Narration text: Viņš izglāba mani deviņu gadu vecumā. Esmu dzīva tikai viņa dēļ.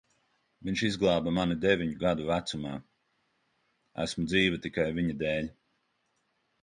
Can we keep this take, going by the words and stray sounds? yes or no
yes